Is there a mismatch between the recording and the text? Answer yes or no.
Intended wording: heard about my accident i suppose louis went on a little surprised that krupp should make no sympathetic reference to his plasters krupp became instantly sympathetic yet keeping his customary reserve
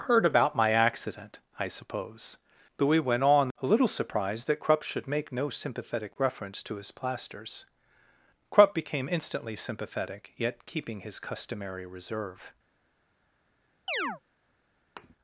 no